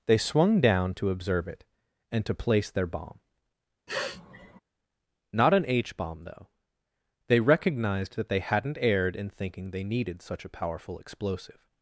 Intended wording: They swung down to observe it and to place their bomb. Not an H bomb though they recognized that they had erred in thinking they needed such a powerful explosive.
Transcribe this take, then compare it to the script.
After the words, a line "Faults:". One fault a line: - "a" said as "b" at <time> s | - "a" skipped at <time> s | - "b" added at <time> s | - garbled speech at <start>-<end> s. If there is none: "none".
They swung down to observe it and to place their bomb. Not an H bomb though they recognized that they hadn't erred in thinking they needed such a powerful explosive.
Faults:
- "had" said as "hadn't" at 8.4 s